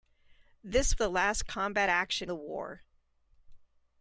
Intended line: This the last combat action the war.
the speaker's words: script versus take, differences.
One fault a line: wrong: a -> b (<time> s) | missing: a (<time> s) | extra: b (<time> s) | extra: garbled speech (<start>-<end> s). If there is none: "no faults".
no faults